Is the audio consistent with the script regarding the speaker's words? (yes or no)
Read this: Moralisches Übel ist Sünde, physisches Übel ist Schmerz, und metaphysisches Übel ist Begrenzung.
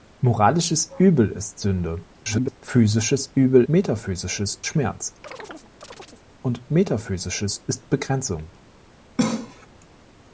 no